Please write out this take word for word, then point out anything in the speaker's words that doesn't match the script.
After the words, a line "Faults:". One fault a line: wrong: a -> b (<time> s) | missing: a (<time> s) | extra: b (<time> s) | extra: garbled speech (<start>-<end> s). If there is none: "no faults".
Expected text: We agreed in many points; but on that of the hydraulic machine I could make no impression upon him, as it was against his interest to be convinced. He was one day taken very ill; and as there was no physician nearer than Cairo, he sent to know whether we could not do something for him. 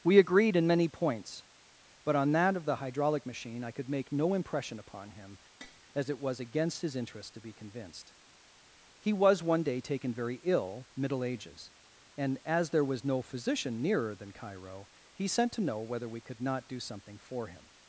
We agreed in many points; but on that of the hydraulic machine I could make no impression upon him, as it was against his interest to be convinced. He was one day taken very ill; middle ages and as there was no physician nearer than Cairo, he sent to know whether we could not do something for him.
Faults:
extra: middle ages (10.9 s)